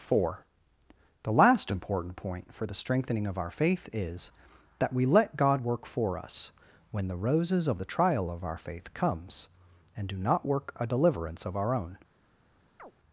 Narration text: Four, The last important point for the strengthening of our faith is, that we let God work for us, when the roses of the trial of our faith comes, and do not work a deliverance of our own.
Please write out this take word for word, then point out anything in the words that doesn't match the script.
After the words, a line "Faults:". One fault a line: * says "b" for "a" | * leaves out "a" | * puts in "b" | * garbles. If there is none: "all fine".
Four, The last important point for the strengthening of our faith is, that we let God work for us, when the roses of the trial of our faith comes, and do not work a deliverance of our own.
Faults:
all fine